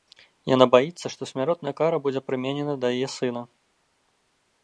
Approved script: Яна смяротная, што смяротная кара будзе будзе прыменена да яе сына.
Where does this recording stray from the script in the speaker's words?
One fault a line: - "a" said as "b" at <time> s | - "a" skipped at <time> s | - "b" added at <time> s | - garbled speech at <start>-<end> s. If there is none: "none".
- "смяротная" said as "баіцца" at 0.8 s
- "будзе" skipped at 2.2 s